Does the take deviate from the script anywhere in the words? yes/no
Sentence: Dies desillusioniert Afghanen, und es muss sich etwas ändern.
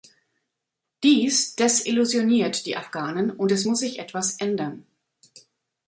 yes